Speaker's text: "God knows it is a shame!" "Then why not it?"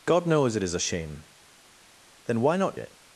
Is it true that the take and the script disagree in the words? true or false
false